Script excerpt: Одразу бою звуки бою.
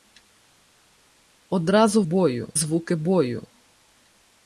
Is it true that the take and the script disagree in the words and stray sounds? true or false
false